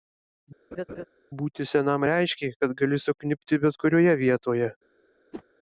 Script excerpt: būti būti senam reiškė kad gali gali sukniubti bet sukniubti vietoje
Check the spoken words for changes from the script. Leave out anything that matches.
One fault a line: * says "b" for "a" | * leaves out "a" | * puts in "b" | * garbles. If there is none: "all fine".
* leaves out "būti"
* leaves out "gali"
* says "kurioje" for "sukniubti"